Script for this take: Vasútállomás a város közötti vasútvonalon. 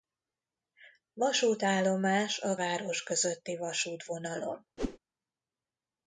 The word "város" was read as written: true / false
true